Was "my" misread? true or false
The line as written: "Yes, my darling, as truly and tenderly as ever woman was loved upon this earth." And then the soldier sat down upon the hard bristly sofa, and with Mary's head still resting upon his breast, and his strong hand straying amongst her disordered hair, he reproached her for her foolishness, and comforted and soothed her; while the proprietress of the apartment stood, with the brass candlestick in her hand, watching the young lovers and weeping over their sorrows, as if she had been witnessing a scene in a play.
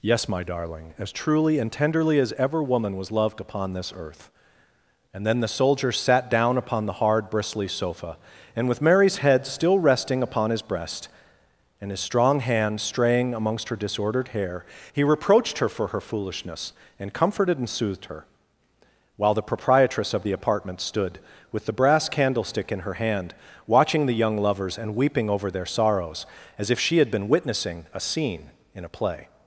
false